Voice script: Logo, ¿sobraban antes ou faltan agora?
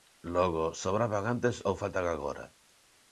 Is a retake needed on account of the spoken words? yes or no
no